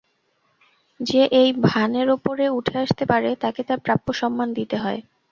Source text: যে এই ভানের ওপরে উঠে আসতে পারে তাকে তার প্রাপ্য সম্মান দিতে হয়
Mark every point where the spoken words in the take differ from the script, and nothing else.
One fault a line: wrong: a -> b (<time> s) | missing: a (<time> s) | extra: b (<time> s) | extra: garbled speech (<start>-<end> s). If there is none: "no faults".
no faults